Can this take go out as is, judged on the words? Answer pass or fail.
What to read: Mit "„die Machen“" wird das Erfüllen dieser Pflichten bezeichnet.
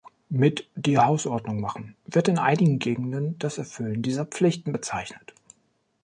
fail